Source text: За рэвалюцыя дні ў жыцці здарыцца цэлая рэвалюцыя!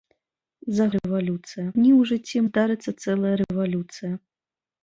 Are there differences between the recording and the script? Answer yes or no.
no